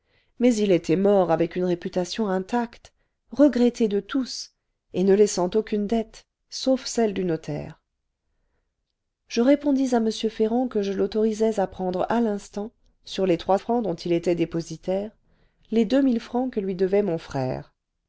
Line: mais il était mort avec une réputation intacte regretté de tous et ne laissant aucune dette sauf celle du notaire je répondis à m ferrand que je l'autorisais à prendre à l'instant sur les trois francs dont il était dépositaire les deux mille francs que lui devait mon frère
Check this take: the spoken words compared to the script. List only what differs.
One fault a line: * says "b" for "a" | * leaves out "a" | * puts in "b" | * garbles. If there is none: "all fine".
all fine